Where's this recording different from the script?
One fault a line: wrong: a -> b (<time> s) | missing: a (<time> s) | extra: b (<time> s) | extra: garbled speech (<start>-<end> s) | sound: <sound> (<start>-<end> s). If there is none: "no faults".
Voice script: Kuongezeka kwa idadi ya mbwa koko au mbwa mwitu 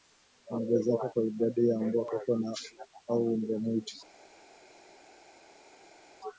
no faults